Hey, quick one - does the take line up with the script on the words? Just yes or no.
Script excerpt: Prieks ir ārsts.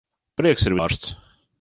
yes